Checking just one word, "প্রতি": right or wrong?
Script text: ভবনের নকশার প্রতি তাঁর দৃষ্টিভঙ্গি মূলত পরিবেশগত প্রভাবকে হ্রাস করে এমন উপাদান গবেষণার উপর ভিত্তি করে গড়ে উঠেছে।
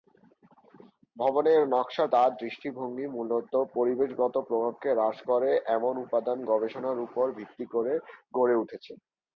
wrong